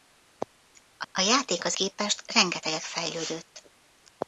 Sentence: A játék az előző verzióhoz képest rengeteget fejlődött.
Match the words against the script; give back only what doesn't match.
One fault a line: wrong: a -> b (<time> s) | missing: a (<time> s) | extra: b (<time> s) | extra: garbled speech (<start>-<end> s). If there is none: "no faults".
extra: a (1.1 s)
missing: előző verzióhoz (1.8 s)